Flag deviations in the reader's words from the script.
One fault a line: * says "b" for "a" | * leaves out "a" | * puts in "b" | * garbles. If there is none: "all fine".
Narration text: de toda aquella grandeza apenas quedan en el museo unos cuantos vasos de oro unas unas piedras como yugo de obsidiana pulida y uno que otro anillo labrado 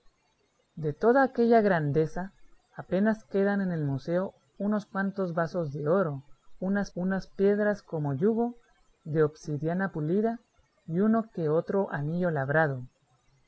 all fine